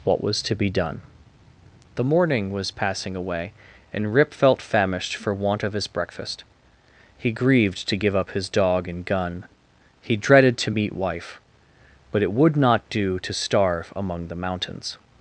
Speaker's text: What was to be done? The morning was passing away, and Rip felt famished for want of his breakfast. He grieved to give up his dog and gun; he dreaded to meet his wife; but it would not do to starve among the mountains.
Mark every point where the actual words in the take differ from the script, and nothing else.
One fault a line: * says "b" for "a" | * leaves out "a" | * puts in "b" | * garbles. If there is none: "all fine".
* leaves out "his"